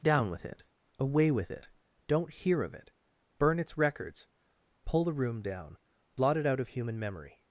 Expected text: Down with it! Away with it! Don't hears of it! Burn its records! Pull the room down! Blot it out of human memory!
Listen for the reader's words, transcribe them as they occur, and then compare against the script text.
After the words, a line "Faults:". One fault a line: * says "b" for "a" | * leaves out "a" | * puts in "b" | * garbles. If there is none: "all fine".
Down with it! Away with it! Don't hear of it! Burn its records! Pull the room down! Blot it out of human memory!
Faults:
* says "hear" for "hears"